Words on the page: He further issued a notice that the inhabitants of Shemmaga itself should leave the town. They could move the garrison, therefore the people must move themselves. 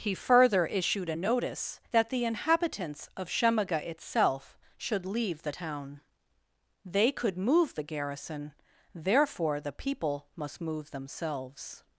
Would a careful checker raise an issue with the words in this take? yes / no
no